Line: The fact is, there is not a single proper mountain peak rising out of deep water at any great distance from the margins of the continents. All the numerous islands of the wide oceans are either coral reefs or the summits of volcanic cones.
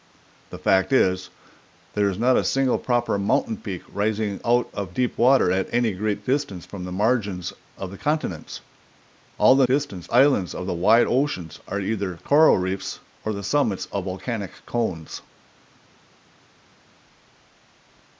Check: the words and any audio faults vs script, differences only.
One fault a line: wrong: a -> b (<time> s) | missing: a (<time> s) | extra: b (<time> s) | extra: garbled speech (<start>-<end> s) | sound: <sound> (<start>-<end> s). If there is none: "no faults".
wrong: numerous -> distance (9.7 s)